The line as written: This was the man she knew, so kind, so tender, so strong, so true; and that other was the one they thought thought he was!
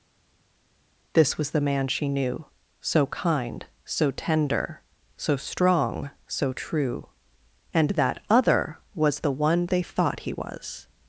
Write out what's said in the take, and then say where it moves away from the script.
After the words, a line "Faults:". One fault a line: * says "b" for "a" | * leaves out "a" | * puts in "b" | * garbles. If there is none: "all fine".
This was the man she knew, so kind, so tender, so strong, so true; and that other was the one they thought he was!
Faults:
* leaves out "thought"